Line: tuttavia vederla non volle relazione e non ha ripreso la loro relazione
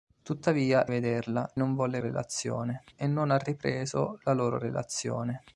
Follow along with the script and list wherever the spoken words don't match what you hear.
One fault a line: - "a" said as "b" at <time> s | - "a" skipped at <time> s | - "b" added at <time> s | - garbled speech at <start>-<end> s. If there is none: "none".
none